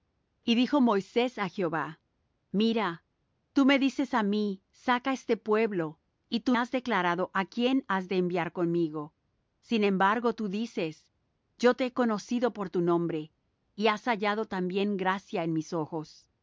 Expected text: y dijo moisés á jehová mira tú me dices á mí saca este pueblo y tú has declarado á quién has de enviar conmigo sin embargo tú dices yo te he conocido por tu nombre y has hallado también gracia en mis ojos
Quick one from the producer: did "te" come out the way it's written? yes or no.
yes